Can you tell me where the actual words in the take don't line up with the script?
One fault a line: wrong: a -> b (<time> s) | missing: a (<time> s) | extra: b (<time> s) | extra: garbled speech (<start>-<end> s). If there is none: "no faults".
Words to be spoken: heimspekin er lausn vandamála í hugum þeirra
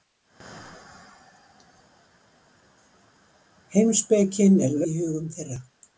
missing: lausn vandamála (4.8 s)